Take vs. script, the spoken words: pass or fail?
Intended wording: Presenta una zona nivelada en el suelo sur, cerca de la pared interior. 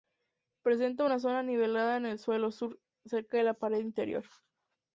pass